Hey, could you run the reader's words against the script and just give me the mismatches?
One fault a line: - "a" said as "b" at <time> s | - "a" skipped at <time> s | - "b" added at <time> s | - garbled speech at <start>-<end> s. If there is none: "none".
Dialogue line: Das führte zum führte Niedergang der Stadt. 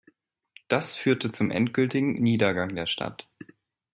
- "führte" said as "endgültigen" at 1.5 s